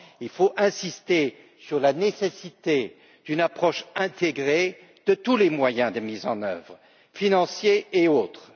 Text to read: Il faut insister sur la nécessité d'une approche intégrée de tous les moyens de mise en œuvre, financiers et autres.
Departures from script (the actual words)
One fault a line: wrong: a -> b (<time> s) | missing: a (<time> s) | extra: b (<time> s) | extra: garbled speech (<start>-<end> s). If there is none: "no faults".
no faults